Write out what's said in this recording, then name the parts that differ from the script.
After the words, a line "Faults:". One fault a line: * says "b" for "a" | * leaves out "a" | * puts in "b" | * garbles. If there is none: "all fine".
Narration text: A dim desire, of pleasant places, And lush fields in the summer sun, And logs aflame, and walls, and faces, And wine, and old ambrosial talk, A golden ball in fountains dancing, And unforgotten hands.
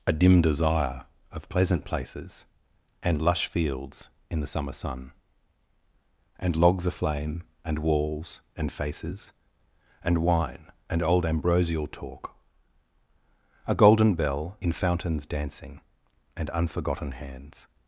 A dim desire, of pleasant places, And lush fields in the summer sun, And logs aflame, and walls, and faces, And wine, and old ambrosial talk, A golden bell in fountains dancing, And unforgotten hands.
Faults:
* says "bell" for "ball"